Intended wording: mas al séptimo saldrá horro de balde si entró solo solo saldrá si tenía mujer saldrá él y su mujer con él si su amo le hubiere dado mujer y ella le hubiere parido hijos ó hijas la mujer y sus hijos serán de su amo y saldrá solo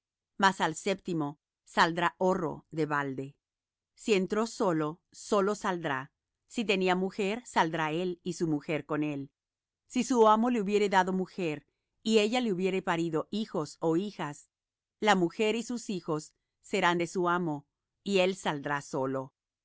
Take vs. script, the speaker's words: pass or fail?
fail